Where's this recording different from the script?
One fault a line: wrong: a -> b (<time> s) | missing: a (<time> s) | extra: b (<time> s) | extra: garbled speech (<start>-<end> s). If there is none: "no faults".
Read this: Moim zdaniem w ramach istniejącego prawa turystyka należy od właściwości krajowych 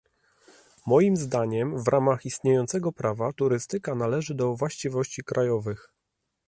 wrong: od -> do (4.3 s)